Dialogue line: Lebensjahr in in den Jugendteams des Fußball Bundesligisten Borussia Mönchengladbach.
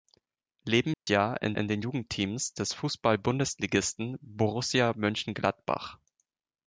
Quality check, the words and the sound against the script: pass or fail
fail